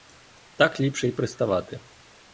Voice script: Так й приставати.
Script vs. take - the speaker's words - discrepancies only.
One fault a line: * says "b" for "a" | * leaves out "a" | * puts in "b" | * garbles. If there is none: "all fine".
* puts in "ліпше"